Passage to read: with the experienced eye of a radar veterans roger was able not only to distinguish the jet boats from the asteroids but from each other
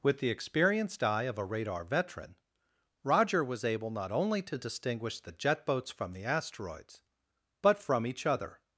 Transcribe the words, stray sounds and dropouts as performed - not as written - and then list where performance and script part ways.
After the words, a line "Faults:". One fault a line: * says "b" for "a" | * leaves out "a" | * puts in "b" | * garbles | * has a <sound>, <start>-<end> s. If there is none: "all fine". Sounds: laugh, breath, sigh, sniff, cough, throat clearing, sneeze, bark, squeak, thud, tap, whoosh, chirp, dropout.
with the experienced eye of a radar veteran roger was able not only to distinguish the jet boats from the asteroids but from each other
Faults:
* says "veteran" for "veterans"